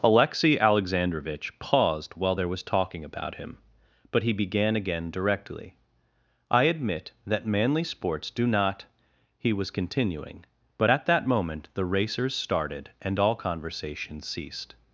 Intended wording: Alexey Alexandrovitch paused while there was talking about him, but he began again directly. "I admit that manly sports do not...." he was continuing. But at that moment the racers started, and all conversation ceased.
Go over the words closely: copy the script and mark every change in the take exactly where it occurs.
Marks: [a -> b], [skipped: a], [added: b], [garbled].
Alexey Alexandrovitch paused while there was talking about him, but he began again directly. "I admit that manly sports do not...." he was continuing. But at that moment the racers started, and all conversation ceased.